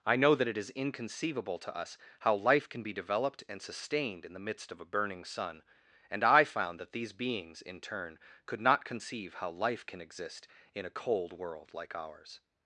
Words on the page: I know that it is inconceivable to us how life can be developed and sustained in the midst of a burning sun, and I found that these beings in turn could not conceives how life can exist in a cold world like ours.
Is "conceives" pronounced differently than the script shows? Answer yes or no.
yes